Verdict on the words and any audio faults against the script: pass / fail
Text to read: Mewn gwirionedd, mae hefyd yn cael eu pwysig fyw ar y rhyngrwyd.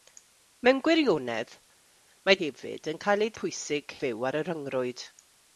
pass